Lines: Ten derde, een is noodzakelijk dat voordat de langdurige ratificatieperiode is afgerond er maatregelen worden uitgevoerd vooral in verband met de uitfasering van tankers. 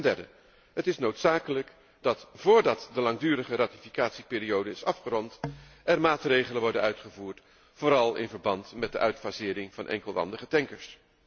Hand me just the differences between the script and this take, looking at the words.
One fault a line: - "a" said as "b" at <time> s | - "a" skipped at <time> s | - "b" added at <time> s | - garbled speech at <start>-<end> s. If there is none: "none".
- "een" said as "het" at 0.7 s
- "enkelwandige" added at 9.9 s